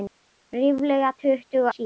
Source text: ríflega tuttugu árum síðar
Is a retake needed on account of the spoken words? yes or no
yes